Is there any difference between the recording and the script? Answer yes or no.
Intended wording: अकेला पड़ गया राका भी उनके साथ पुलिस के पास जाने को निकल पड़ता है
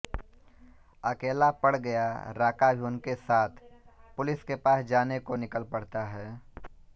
no